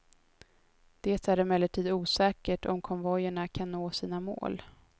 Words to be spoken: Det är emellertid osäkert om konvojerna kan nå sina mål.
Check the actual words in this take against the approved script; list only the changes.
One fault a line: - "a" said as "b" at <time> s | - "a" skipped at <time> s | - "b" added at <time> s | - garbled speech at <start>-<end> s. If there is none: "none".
none